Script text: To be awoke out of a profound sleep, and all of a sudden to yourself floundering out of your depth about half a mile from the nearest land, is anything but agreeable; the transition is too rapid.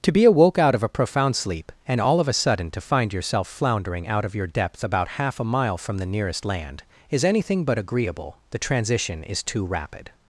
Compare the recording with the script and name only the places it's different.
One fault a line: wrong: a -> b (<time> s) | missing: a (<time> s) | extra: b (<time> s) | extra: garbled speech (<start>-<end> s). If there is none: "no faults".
extra: find (2.8 s)